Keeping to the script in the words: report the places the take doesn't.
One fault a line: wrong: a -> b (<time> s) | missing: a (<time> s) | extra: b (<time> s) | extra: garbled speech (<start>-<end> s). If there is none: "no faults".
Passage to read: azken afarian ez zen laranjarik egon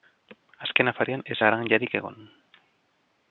missing: zen (1.4 s)